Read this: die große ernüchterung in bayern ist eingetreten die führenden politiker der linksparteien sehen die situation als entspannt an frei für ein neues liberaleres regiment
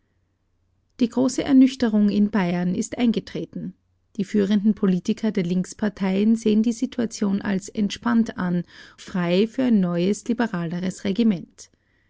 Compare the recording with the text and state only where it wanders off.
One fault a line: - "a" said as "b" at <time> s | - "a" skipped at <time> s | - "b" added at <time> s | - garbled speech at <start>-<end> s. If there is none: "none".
none